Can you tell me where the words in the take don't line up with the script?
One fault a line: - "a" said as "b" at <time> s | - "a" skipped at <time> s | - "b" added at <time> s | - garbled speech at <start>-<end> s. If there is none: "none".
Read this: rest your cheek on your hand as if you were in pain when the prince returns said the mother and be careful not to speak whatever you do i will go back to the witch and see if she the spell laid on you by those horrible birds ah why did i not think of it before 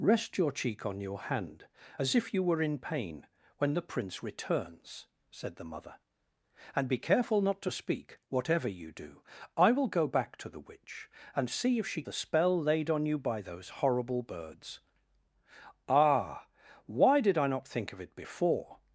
none